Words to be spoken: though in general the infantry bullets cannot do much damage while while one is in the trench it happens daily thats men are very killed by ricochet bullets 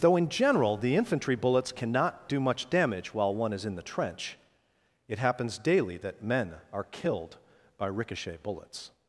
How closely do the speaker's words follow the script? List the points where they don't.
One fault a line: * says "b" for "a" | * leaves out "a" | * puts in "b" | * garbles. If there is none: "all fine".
* leaves out "while"
* says "that" for "thats"
* leaves out "very"